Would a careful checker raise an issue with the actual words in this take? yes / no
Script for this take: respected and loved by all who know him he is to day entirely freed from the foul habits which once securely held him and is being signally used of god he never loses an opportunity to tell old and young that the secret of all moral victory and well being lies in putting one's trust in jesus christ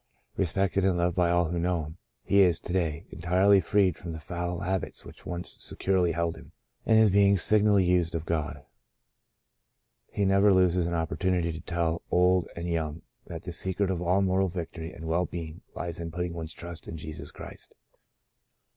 no